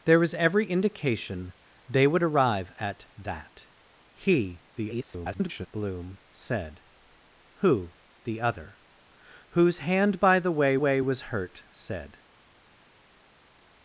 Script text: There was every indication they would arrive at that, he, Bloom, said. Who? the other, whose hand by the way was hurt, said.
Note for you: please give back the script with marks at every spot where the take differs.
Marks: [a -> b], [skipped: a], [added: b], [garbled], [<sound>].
There was every indication they would arrive at that, he, [garbled] Bloom, said. Who? the other, whose hand by the way [added: way] was hurt, said.